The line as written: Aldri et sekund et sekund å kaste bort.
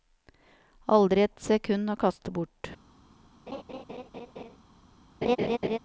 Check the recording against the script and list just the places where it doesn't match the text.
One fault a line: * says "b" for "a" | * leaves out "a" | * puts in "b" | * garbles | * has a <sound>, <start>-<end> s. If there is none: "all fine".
* leaves out "et sekund"
* has a laugh, 3.5-4.6 s
* has a laugh, 5.2-5.8 s